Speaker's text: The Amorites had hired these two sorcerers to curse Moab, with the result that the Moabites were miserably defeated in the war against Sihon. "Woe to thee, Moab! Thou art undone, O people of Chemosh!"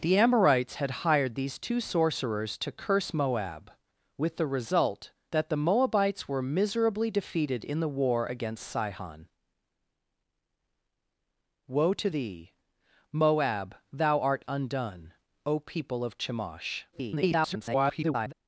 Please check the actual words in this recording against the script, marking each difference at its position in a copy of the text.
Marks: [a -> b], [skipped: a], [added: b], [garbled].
The Amorites had hired these two sorcerers to curse Moab, with the result that the Moabites were miserably defeated in the war against Sihon. "Woe to thee, Moab! Thou art undone, O people of Chemosh!" [garbled]